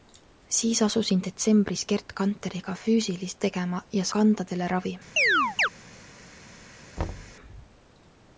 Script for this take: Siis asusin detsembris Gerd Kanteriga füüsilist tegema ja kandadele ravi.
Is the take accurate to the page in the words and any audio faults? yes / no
no